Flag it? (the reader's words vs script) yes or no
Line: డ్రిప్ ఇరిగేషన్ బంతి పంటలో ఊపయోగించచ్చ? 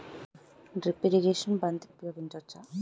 yes